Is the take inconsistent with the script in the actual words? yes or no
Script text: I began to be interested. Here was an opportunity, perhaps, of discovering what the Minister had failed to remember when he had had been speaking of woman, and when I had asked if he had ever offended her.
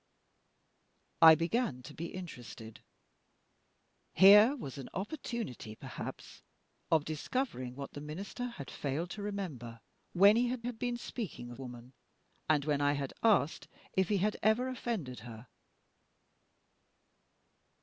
no